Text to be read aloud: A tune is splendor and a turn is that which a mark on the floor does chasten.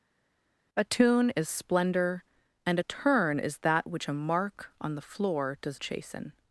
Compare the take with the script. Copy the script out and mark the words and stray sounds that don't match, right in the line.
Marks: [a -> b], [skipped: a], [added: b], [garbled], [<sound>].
A tune is splendor and a turn is that which a mark on the floor does chasten.